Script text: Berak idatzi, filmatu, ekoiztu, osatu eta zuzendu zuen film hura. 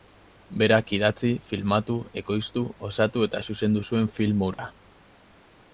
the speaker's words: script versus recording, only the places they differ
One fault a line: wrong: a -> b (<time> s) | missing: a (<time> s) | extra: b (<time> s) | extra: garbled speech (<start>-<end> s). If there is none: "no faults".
no faults